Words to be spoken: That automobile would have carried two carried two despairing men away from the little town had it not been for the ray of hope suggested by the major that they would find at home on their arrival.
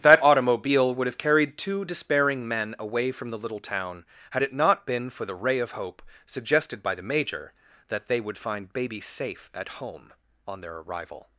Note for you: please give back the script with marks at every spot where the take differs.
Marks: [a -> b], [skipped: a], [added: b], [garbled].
That automobile would have carried two [skipped: carried two] despairing men away from the little town had it not been for the ray of hope suggested by the major that they would find [added: baby safe] at home on their arrival.